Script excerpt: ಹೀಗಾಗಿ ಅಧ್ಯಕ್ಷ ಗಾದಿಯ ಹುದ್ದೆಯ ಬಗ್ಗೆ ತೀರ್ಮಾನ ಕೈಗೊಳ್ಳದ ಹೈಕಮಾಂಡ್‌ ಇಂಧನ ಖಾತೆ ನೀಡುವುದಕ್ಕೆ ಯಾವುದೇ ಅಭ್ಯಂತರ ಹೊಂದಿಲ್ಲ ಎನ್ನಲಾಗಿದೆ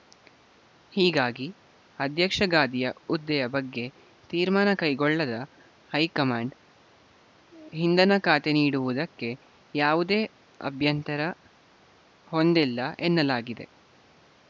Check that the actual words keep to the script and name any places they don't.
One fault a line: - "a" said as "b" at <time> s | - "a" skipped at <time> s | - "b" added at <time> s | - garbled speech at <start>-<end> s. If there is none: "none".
none